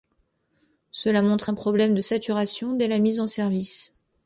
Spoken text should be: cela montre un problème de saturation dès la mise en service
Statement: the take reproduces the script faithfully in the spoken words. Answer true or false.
true